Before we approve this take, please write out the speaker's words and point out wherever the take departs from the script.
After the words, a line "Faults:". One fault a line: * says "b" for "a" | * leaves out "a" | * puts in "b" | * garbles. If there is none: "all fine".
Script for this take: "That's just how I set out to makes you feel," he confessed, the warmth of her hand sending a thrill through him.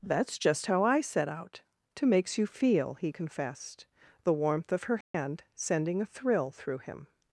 "That's just how I set out to makes you feel," he confessed, the warmth of her hand sending a thrill through him.
Faults:
all fine